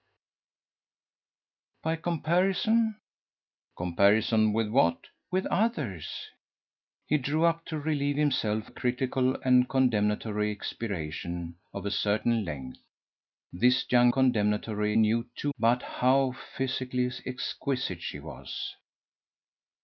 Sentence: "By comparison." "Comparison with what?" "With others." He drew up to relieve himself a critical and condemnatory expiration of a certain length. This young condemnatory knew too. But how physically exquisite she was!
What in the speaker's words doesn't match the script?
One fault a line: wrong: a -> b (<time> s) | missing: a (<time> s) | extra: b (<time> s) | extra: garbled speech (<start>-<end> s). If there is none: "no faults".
no faults